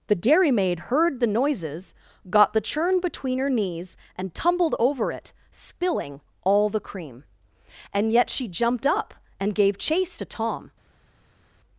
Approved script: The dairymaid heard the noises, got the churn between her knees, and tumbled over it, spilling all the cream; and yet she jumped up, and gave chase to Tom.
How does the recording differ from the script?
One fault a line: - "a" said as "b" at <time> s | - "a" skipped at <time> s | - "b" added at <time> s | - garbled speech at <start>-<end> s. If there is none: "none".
none